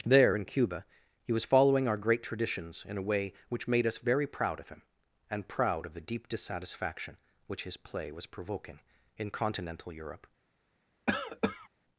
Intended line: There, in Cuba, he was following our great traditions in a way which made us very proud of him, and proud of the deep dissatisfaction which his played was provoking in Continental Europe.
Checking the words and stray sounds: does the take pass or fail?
fail